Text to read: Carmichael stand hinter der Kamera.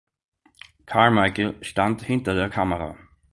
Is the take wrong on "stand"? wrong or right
right